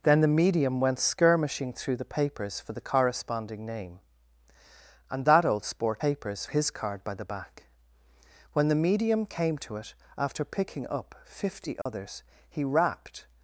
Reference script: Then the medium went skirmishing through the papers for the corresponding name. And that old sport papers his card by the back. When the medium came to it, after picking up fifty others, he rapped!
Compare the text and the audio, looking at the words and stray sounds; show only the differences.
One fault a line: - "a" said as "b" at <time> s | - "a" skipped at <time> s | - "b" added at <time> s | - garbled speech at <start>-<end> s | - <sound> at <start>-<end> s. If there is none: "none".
- dropout at 11.8-11.9 s